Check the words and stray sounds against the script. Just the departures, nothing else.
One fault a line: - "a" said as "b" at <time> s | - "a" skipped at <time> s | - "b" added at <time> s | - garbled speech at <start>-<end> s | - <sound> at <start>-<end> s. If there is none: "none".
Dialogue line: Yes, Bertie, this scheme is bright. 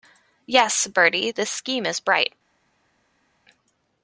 none